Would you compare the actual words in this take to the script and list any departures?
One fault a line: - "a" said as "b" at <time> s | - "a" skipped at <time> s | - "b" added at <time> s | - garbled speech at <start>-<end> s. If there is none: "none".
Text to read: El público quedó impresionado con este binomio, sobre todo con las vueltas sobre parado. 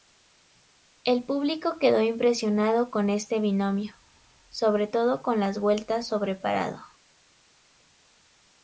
none